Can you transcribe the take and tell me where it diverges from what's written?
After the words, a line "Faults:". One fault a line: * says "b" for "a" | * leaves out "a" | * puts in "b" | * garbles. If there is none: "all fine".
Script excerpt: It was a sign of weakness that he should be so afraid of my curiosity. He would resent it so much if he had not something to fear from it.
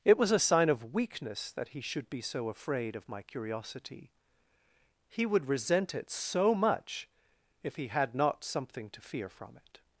It was a sign of weakness that he should be so afraid of my curiosity. He would resent it so much if he had not something to fear from it.
Faults:
all fine